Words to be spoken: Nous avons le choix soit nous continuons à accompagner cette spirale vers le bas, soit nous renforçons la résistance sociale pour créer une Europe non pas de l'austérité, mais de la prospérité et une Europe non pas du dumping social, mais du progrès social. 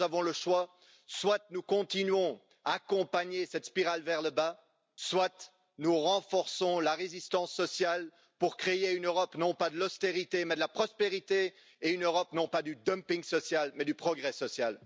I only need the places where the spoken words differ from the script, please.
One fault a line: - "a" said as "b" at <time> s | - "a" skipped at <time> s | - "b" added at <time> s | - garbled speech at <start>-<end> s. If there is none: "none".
none